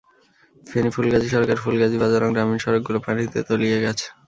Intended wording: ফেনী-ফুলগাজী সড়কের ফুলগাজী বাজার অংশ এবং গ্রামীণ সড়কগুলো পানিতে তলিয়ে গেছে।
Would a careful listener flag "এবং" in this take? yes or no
yes